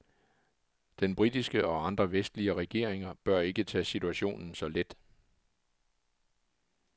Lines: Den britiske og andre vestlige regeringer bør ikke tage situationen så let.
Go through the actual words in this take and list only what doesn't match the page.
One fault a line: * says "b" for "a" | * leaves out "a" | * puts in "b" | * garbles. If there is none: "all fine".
all fine